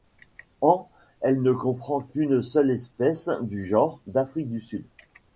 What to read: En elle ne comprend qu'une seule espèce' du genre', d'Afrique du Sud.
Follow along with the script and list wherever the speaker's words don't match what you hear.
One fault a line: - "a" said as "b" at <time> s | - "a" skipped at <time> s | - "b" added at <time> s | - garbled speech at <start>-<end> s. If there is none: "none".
none